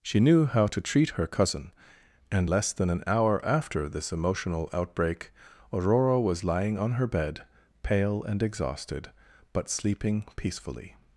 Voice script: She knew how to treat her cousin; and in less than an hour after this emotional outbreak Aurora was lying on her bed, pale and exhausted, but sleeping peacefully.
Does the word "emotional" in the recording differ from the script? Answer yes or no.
no